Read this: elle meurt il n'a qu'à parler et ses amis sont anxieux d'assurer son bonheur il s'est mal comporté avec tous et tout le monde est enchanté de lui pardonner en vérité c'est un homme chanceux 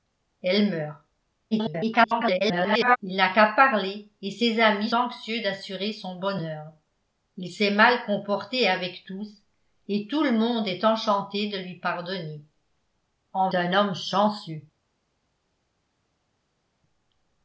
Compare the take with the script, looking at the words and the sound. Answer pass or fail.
fail